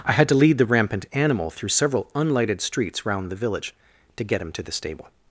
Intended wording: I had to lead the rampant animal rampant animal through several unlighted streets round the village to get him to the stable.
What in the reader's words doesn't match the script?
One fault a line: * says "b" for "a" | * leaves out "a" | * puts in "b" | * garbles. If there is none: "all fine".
* leaves out "rampant animal"